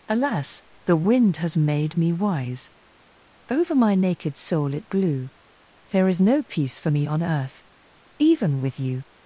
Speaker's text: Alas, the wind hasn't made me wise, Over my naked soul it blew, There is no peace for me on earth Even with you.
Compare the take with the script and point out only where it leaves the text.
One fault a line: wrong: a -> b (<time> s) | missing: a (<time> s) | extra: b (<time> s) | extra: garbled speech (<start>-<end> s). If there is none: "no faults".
wrong: hasn't -> has (1.4 s)